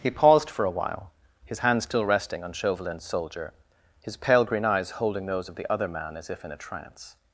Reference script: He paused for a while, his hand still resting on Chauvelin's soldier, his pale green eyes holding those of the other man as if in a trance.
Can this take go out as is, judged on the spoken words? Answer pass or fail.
pass